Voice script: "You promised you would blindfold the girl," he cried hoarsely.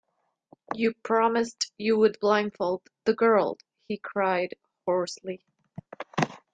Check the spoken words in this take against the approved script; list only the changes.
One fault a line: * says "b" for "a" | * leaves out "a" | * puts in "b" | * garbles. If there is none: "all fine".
all fine